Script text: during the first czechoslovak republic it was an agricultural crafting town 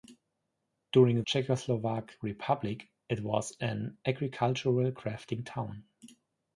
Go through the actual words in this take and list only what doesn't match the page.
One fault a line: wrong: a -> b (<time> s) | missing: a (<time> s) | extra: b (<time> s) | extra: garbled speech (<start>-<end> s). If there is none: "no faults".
missing: the first (1.2 s)